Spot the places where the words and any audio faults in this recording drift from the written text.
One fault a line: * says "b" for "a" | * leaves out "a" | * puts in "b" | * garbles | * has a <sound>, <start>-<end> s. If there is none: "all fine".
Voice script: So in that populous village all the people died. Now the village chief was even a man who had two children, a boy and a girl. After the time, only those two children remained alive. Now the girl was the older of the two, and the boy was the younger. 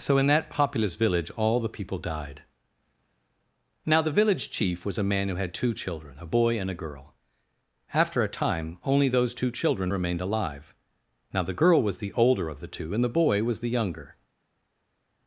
* leaves out "even"
* says "a" for "the"